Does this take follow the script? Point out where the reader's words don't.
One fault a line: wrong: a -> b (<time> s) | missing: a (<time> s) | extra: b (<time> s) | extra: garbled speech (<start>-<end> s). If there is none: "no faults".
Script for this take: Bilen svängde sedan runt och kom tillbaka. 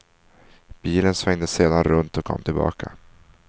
no faults